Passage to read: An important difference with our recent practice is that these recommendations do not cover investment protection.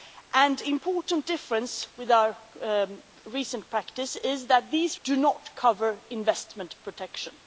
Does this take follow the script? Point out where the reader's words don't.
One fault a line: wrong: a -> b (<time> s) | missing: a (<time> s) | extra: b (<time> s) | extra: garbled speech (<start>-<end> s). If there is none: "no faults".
missing: recommendations (5.0 s)